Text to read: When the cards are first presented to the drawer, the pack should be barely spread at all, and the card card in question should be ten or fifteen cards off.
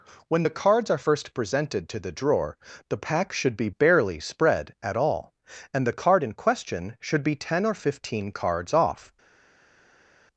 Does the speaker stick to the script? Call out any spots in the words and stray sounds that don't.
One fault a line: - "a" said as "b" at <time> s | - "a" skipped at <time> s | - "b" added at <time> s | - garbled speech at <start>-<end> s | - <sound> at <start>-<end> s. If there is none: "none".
- "card" skipped at 6.2 s